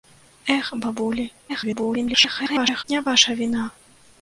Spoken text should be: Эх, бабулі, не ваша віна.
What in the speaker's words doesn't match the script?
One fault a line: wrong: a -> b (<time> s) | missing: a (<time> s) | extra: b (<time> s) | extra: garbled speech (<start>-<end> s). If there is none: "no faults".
extra: garbled speech (1.5-2.8 s)